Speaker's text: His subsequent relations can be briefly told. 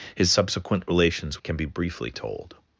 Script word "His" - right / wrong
right